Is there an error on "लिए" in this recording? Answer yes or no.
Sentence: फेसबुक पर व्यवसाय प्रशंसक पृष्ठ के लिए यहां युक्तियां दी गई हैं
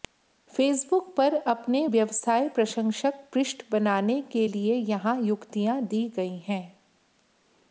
no